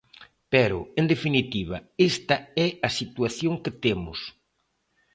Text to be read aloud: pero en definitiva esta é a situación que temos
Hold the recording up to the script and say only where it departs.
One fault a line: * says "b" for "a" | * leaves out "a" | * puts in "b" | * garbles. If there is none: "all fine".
all fine